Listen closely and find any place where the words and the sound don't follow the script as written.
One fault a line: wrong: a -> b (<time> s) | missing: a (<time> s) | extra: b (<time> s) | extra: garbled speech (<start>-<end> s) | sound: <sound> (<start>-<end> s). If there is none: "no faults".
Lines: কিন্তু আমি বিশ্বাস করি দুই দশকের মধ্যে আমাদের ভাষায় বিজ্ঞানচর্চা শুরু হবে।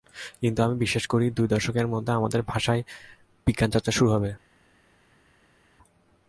no faults